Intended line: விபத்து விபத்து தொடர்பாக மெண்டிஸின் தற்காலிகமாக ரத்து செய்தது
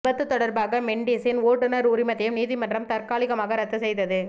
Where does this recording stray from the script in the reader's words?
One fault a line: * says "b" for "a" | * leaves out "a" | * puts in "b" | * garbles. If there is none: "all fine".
* leaves out "விபத்து"
* puts in "ஓட்டுநர் உரிமத்தையும் நீதிமன்றம்"